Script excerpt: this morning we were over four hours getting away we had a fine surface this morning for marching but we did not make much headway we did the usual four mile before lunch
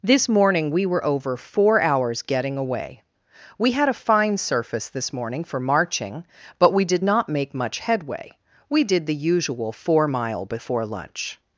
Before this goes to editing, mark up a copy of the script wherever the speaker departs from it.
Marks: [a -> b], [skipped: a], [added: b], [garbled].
this morning we were over four hours getting away we had a fine surface this morning for marching but we did not make much headway we did the usual four mile before lunch